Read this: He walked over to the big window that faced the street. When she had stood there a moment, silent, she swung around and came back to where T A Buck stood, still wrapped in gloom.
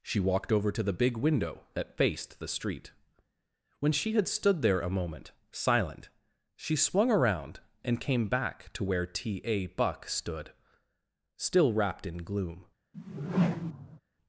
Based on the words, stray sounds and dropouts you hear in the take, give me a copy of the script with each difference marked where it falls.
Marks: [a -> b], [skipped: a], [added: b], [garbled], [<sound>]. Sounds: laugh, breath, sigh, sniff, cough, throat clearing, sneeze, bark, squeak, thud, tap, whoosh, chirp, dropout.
[He -> She] walked over to the big window that faced the street. When she had stood there a moment, silent, she swung around and came back to where T A Buck stood, still wrapped in gloom. [whoosh]